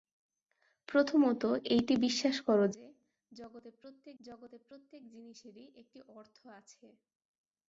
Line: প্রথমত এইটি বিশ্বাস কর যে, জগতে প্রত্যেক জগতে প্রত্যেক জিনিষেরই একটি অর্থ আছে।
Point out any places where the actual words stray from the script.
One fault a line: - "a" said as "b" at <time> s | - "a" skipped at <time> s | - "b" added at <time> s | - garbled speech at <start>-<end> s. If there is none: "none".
none